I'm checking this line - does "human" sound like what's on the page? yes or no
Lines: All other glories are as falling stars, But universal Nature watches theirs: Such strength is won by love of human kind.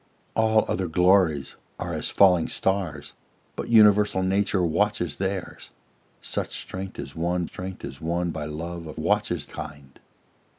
no